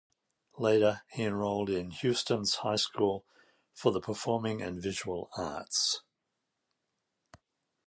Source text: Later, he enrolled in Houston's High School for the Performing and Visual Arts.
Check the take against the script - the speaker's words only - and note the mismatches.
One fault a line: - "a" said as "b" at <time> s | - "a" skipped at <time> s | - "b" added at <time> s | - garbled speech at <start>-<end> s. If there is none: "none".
none